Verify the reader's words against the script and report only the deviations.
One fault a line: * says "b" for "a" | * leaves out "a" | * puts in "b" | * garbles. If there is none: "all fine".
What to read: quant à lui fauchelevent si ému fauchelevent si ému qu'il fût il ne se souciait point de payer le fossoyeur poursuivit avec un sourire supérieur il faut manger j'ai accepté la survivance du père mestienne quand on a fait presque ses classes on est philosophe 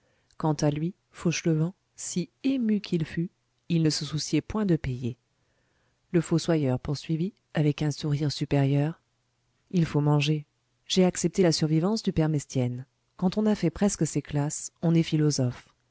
* leaves out "fauchelevent si ému"